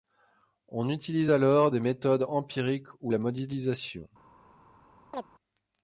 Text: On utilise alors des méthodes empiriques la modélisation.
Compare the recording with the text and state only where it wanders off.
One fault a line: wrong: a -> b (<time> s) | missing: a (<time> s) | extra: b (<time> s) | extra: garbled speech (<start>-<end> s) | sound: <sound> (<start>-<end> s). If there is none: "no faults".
extra: ou (3.0 s)
sound: chirp (5.1-5.3 s)